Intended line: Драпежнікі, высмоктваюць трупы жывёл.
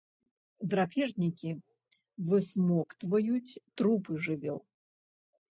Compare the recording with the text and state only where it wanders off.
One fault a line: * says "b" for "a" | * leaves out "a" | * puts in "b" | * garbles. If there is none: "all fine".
all fine